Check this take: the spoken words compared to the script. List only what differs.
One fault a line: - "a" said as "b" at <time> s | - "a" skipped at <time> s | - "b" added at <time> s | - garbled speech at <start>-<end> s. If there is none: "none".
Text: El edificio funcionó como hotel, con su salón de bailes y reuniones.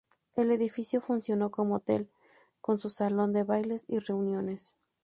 none